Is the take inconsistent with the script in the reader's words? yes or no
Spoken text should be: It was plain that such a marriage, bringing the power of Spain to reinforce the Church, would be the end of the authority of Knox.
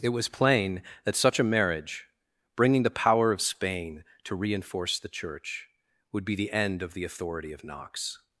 no